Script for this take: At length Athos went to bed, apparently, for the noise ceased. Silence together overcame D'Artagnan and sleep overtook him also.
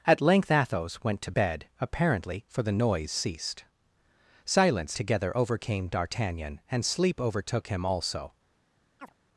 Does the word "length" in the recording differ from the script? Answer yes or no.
no